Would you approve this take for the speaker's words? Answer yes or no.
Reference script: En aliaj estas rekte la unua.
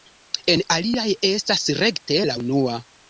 yes